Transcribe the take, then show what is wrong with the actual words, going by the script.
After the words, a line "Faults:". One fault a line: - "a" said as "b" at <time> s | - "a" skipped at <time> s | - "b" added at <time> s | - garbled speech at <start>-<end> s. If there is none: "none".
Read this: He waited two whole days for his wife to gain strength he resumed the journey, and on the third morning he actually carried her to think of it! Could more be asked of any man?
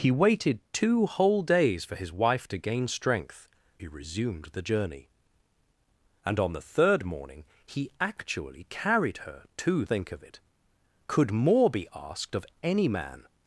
He waited two whole days for his wife to gain strength he resumed the journey, and on the third morning he actually carried her to think of it! Could more be asked of any man?
Faults:
none